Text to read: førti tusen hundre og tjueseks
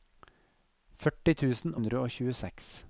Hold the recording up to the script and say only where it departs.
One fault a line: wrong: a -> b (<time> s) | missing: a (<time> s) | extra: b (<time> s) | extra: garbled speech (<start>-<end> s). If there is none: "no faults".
no faults